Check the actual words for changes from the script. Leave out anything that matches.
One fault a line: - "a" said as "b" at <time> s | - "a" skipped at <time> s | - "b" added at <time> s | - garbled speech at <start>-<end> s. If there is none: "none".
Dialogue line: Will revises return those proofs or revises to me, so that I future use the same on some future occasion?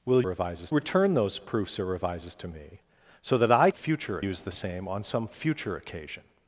none